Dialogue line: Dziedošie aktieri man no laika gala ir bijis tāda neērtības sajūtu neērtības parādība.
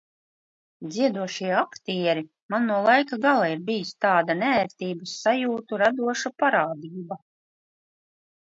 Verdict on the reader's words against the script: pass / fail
fail